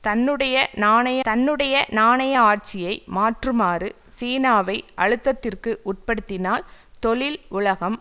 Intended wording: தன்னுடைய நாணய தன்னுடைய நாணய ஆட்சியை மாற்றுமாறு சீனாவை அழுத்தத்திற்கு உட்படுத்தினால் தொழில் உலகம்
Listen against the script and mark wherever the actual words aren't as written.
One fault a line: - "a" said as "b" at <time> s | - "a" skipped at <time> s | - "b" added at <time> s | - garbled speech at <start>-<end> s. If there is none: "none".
none